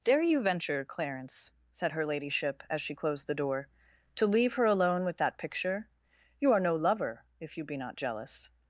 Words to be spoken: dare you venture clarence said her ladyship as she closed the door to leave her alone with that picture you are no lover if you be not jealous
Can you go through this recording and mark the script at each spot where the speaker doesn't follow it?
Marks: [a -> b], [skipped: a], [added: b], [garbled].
dare you venture clarence said her ladyship as she closed the door to leave her alone with that picture you are no lover if you be not jealous